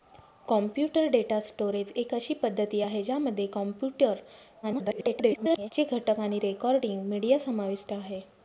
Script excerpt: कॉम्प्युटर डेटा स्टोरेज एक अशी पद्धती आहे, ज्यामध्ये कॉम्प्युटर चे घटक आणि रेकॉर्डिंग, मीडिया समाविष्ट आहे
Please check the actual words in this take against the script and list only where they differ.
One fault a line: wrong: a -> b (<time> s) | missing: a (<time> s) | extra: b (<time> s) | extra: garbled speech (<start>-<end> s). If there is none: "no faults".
extra: garbled speech (4.6-5.7 s)